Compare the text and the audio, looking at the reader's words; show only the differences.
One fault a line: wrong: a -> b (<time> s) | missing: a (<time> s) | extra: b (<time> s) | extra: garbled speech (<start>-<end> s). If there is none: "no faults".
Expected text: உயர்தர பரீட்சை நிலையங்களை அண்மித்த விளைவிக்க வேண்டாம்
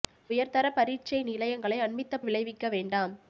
no faults